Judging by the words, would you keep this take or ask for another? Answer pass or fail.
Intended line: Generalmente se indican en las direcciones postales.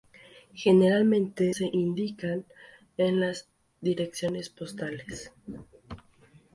pass